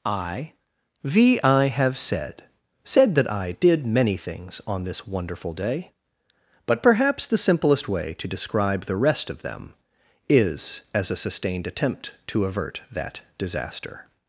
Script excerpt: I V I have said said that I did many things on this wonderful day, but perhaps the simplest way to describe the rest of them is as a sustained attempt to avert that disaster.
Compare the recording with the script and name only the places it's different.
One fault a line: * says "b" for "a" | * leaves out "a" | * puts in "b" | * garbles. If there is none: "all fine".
all fine